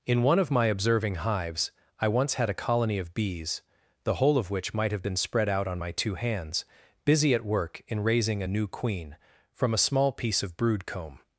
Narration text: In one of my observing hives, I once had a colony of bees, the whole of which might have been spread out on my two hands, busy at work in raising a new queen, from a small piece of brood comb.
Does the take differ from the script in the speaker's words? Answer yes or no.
no